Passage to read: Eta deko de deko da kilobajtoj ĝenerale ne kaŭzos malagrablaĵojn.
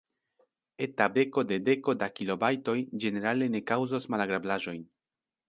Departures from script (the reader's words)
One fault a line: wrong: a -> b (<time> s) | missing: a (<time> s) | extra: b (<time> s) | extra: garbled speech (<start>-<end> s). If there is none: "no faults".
no faults